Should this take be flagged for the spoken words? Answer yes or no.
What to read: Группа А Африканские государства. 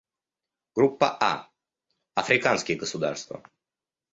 no